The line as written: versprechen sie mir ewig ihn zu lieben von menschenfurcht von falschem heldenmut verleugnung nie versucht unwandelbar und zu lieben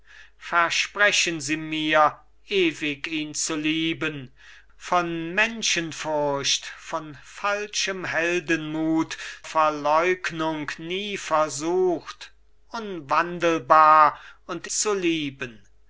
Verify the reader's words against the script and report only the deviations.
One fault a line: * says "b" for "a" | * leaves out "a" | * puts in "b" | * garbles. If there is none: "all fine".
all fine